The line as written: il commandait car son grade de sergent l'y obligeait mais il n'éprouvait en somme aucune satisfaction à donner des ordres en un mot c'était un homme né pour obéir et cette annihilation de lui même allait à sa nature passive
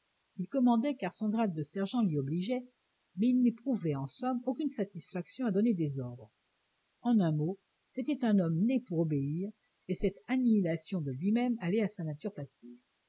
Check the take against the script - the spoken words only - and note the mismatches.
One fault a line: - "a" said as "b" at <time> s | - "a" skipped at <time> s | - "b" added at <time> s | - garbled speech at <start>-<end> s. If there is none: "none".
none